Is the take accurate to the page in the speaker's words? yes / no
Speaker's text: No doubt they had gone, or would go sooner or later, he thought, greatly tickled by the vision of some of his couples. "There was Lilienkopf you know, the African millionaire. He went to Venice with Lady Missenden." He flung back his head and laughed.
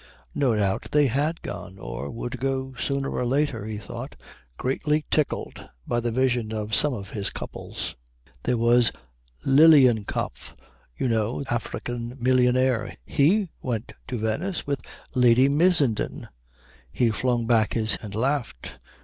no